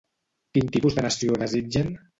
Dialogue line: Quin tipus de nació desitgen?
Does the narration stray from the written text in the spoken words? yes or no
no